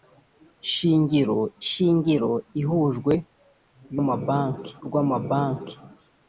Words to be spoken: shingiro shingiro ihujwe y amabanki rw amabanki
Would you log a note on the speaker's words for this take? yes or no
no